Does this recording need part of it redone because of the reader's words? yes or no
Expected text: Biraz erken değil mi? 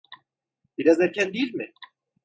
no